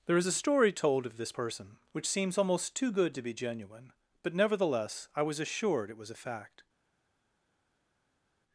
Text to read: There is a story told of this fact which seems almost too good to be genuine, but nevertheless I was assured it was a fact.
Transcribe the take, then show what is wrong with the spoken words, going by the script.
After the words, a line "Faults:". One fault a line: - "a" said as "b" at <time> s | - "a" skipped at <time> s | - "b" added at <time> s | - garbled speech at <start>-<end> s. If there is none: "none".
There is a story told of this person which seems almost too good to be genuine, but nevertheless I was assured it was a fact.
Faults:
- "fact" said as "person" at 1.3 s